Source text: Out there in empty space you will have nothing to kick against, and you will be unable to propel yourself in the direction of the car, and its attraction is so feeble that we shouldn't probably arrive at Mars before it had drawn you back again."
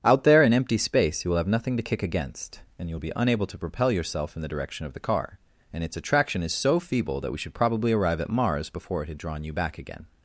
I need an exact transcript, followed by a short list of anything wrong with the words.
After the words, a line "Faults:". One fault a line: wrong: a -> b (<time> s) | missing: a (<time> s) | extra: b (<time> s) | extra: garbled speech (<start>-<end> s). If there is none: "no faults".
Out there in empty space you will have nothing to kick against, and you will be unable to propel yourself in the direction of the car, and its attraction is so feeble that we should probably arrive at Mars before it had drawn you back again."
Faults:
wrong: shouldn't -> should (7.4 s)